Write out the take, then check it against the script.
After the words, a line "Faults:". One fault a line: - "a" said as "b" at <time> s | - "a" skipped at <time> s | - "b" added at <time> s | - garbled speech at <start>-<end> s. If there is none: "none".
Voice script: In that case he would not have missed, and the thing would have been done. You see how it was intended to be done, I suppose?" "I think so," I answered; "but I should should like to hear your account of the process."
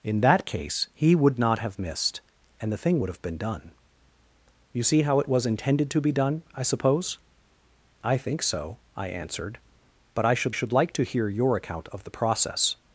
In that case he would not have missed, and the thing would have been done. You see how it was intended to be done, I suppose?" "I think so," I answered; "but I should should like to hear your account of the process."
Faults:
none